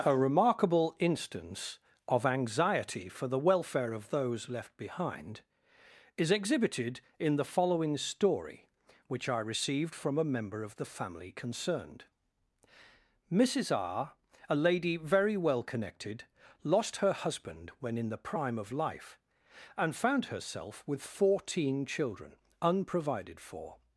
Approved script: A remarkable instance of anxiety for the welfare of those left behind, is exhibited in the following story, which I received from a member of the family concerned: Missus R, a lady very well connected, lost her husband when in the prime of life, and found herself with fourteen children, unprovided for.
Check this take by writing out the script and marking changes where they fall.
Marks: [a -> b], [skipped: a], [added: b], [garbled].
A remarkable instance of anxiety for the welfare of those left behind, is exhibited in the following story, which I received from a member of the family concerned: Missus R, a lady very well connected, lost her husband when in the prime of life, and found herself with fourteen children, unprovided for.